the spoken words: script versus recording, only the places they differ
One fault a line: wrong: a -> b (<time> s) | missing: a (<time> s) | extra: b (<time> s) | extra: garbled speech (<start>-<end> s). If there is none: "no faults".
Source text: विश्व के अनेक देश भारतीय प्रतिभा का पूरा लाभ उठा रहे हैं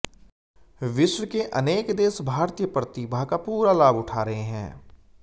no faults